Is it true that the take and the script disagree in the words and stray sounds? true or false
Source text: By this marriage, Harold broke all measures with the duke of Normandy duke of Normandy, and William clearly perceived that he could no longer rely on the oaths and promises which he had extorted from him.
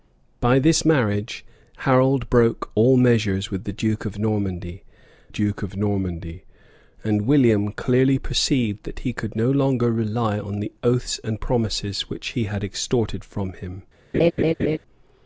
true